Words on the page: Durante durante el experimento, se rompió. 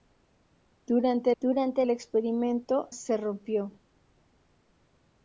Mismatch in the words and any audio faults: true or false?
false